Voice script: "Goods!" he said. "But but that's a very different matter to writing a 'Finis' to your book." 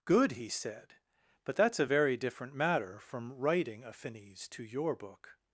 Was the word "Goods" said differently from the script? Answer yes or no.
yes